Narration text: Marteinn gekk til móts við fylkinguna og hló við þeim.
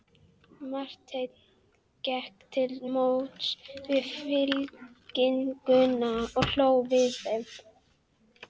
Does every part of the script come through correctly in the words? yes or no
yes